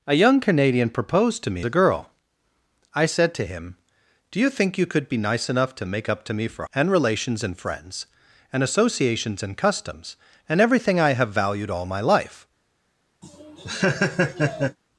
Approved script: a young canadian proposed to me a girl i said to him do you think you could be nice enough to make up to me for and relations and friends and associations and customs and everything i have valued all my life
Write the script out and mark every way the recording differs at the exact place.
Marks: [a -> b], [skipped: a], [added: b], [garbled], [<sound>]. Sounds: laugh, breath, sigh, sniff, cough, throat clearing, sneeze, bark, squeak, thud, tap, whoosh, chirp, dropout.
a young canadian proposed to me a girl i said to him do you think you could be nice enough to make up to me for and relations and friends and associations and customs and everything i have valued all my life [laugh]